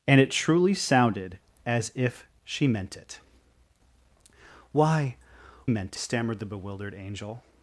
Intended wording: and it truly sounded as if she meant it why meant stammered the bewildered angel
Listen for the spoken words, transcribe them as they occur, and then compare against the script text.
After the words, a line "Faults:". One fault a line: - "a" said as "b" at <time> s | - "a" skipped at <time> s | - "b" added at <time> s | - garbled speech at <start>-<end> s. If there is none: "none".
and it truly sounded as if she meant it why meant stammered the bewildered angel
Faults:
none